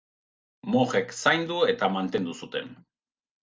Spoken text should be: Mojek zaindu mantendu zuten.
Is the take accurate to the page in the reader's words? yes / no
no